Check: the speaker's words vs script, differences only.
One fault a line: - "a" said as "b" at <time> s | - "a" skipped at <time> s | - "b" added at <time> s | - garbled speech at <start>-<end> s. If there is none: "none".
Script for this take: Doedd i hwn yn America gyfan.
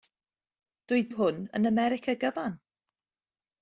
none